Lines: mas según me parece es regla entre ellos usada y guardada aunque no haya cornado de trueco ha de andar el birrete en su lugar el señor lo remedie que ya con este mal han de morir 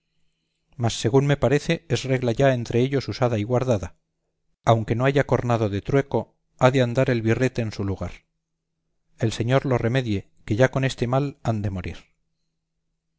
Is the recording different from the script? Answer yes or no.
yes